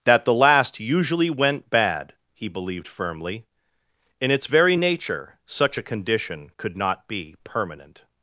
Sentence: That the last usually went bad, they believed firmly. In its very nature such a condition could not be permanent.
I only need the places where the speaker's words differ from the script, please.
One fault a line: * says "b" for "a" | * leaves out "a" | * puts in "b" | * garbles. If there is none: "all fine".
* says "he" for "they"